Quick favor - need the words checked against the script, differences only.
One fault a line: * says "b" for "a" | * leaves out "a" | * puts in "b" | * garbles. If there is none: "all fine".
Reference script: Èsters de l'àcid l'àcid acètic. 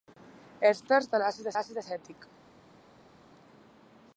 all fine